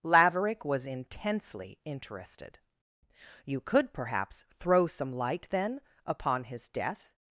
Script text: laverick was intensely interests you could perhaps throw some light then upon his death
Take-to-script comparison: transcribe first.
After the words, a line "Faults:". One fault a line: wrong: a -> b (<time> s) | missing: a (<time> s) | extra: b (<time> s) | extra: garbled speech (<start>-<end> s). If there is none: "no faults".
laverick was intensely interested you could perhaps throw some light then upon his death
Faults:
wrong: interests -> interested (1.9 s)